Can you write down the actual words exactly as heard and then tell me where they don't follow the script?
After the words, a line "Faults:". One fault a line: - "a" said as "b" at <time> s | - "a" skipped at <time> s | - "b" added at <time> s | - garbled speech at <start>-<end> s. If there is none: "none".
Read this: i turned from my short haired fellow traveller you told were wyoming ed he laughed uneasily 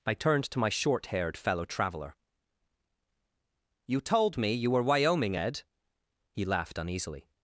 i turned to my short haired fellow traveller you told me you were wyoming ed he laughed uneasily
Faults:
- "from" said as "to" at 0.5 s
- "me you" added at 4.4 s